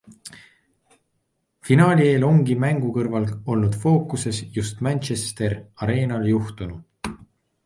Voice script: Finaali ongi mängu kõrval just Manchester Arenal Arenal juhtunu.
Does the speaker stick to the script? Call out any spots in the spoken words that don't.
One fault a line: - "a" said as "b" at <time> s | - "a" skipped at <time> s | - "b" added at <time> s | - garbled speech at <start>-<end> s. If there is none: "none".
- "eel" added at 2.1 s
- "olnud fookuses" added at 3.5 s
- "Arenal" skipped at 6.3 s